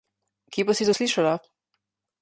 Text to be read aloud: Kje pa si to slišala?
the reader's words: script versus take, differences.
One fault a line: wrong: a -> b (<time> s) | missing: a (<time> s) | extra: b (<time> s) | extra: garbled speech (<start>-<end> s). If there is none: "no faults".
no faults